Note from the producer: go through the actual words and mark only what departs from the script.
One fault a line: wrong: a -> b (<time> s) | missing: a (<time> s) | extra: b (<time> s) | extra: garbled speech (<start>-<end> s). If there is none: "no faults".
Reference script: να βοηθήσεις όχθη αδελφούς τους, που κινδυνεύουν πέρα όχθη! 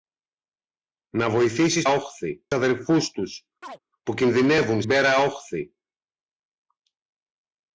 no faults